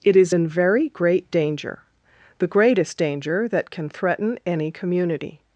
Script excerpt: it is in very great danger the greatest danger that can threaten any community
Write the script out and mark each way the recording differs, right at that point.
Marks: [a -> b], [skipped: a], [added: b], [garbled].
it is in very great danger the greatest danger that can threaten any community